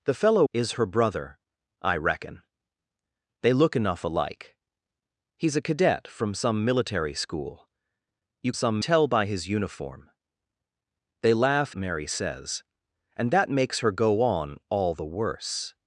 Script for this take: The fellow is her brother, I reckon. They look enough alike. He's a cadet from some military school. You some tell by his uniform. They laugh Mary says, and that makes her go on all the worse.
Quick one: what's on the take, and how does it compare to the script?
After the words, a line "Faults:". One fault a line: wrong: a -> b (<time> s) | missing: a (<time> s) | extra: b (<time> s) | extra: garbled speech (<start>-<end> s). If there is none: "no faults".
The fellow is her brother, I reckon. They look enough alike. He's a cadet from some military school. You some tell by his uniform. They laugh Mary says, and that makes her go on all the worse.
Faults:
no faults